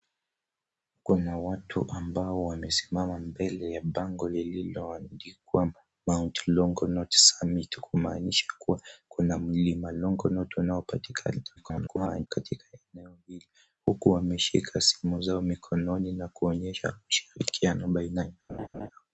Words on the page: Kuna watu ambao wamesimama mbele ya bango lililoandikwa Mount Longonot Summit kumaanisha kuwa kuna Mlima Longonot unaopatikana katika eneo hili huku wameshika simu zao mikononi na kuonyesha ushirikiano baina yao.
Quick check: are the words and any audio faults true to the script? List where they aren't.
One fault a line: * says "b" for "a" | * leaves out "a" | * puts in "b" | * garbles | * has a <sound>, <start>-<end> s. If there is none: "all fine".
* garbles
* has a laugh, 18.5-18.9 s